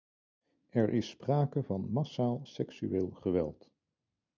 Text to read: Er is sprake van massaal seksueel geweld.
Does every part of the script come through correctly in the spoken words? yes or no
yes